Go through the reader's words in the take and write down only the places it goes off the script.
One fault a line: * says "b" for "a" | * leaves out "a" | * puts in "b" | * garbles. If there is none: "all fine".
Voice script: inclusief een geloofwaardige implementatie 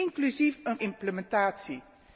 * leaves out "geloofwaardige"